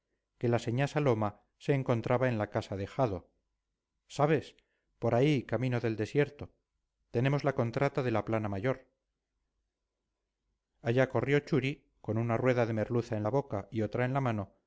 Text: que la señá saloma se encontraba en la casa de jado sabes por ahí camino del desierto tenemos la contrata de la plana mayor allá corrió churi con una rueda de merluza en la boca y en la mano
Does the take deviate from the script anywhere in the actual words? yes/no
yes